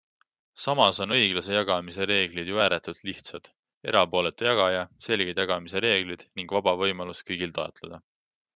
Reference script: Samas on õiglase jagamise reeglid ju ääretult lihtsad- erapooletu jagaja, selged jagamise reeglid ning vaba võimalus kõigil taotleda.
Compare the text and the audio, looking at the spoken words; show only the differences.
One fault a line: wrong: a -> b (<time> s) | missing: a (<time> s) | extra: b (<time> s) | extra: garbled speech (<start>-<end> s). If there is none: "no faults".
no faults